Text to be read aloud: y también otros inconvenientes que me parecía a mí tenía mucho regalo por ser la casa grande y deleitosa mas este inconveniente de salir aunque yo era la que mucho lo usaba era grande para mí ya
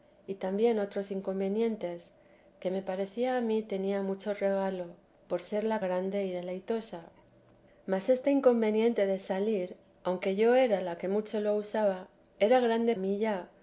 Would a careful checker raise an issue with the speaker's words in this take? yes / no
yes